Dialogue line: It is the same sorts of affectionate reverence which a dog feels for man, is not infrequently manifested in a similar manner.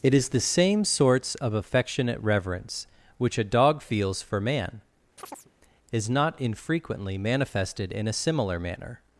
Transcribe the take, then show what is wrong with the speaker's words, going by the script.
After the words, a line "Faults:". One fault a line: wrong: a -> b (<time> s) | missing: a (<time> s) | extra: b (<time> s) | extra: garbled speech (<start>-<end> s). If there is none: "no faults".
It is the same sorts of affectionate reverence which a dog feels for man, is not infrequently manifested in a similar manner.
Faults:
no faults